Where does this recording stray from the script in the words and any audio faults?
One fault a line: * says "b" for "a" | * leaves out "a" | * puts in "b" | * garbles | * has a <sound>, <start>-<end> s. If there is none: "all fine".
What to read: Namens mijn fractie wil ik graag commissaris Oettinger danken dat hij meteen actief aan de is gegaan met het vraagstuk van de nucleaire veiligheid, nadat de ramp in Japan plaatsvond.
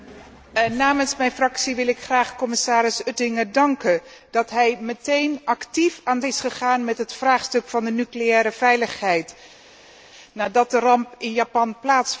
all fine